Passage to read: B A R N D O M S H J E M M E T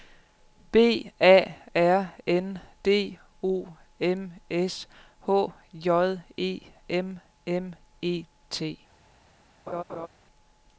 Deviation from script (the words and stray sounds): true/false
true